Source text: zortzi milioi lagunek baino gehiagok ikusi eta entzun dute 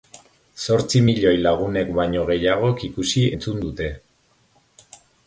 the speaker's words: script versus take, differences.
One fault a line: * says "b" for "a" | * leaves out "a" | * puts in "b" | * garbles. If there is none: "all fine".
* leaves out "eta"